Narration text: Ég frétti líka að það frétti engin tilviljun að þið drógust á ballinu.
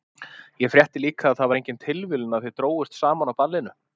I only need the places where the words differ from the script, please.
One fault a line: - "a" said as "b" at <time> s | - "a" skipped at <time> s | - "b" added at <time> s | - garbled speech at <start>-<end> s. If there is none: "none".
- "frétti" said as "var" at 1.5 s
- "saman" added at 3.0 s